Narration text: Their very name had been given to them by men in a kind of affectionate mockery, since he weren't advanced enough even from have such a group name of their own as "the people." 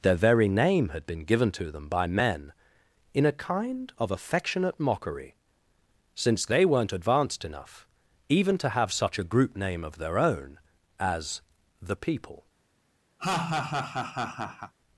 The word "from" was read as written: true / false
false